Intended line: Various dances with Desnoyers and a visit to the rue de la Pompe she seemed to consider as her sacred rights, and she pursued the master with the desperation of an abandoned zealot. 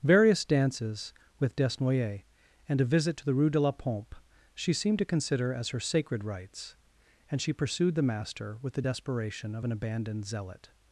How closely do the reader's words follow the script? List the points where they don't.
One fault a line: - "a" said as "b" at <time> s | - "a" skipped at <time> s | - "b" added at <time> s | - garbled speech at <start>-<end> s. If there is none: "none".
none